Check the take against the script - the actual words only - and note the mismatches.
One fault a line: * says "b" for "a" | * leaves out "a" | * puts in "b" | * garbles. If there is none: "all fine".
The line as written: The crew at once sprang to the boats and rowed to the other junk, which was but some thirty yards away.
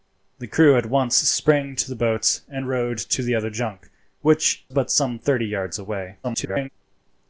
* leaves out "was"
* garbles